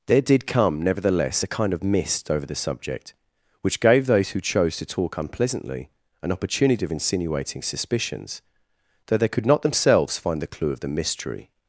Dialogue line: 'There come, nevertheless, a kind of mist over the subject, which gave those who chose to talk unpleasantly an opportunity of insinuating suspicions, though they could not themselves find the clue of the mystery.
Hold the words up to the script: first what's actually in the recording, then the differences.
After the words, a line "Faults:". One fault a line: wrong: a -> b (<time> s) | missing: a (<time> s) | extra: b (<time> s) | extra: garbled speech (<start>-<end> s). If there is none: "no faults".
'There did come, nevertheless, a kind of mist over the subject, which gave those who chose to talk unpleasantly an opportunity of insinuating suspicions, though they could not themselves find the clue of the mystery.
Faults:
extra: did (0.2 s)